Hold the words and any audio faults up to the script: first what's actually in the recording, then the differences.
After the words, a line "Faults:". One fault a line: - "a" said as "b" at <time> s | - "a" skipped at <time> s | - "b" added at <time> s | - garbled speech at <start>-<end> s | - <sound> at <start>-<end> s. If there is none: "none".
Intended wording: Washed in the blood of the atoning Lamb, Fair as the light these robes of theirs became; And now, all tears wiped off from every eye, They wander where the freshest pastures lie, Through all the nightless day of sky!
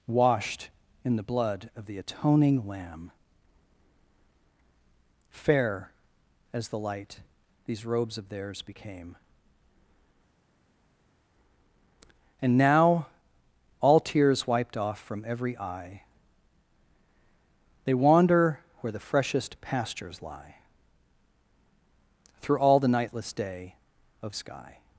Washed in the blood of the atoning Lamb, Fair as the light these robes of theirs became; And now, all tears wiped off from every eye, They wander where the freshest pastures lie, Through all the nightless day of sky!
Faults:
none